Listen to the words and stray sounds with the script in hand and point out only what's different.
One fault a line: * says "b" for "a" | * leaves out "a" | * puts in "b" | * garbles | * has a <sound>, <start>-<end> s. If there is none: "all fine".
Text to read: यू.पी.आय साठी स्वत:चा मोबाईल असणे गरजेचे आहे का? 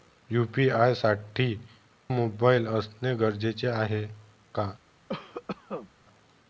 * leaves out "स्वत:चा"
* has a cough, 5.1-5.9 s